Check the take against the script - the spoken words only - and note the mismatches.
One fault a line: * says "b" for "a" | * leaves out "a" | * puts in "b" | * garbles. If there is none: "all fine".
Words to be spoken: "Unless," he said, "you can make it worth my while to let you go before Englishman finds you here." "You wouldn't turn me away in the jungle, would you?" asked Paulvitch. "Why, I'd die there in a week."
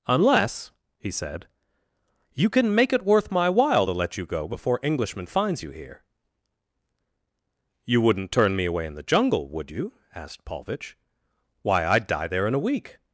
all fine